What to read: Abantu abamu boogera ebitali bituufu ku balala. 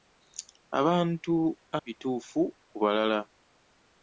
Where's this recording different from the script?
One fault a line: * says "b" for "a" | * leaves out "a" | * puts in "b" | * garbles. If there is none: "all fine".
* leaves out "abamu boogera ebitali"